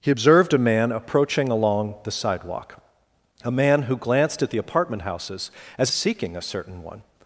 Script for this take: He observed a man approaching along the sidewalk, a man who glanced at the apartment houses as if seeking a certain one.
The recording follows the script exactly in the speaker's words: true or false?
false